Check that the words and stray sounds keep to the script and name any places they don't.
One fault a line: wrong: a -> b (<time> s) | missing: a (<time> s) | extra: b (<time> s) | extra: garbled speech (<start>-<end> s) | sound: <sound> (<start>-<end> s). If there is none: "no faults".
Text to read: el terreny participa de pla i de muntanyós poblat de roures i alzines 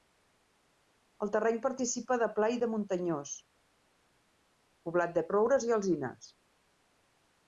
no faults